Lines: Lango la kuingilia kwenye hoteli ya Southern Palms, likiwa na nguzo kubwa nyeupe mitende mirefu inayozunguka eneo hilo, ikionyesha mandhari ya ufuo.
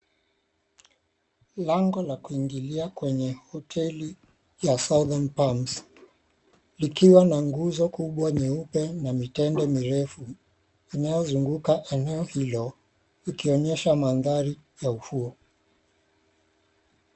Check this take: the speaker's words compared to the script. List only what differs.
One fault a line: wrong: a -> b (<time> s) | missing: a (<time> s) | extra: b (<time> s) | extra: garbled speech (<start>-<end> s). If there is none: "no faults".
extra: na (8.9 s)